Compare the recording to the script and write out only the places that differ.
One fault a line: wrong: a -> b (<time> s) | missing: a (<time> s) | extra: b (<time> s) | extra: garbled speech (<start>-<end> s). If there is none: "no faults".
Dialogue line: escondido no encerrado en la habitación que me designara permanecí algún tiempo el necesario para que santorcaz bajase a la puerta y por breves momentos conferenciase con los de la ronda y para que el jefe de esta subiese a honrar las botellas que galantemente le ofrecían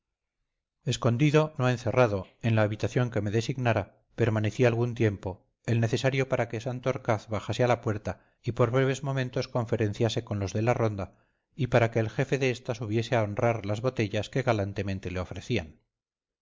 no faults